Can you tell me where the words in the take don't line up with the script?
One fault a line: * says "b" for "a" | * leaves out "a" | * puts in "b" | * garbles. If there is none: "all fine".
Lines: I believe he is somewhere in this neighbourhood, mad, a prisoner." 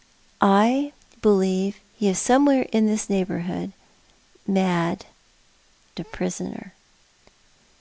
all fine